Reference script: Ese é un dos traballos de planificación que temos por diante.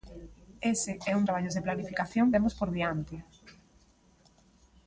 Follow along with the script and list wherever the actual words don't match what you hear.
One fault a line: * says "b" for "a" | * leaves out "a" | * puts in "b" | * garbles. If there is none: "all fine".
* leaves out "dos"
* leaves out "que"